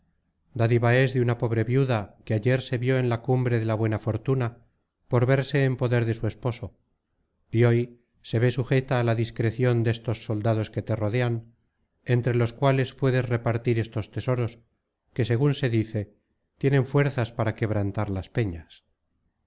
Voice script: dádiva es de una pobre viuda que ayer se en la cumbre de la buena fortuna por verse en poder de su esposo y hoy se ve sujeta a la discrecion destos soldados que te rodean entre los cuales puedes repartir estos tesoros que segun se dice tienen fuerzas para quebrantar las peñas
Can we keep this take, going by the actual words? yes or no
no